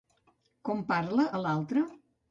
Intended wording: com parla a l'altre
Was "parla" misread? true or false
false